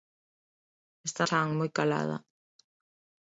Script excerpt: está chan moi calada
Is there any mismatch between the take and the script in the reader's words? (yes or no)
no